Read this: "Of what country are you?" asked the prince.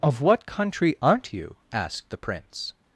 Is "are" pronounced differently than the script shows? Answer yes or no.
yes